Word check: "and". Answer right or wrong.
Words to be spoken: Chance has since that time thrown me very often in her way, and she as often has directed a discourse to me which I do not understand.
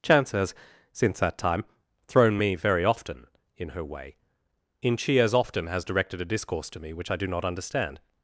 wrong